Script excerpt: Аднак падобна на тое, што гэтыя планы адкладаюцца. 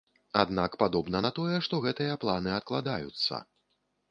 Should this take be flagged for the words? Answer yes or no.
no